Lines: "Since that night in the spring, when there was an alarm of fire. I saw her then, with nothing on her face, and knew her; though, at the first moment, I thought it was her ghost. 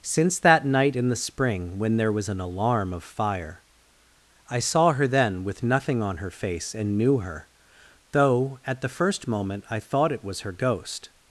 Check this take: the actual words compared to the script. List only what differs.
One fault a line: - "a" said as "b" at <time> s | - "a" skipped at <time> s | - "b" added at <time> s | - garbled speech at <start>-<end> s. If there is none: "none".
none